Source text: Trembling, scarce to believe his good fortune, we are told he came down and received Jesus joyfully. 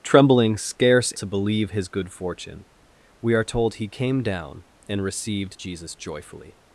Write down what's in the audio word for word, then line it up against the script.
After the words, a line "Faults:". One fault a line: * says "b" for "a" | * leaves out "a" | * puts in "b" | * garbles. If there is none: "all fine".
Trembling, scarce to believe his good fortune, we are told he came down and received Jesus joyfully.
Faults:
all fine